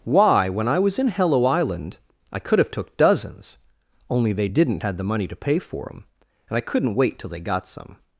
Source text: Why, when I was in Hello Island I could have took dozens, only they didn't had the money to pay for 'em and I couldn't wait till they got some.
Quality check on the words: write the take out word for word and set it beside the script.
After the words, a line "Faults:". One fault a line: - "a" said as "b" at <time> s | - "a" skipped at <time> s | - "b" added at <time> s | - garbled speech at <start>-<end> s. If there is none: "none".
Why, when I was in Hello Island I could have took dozens, only they didn't had the money to pay for 'em and I couldn't wait till they got some.
Faults:
none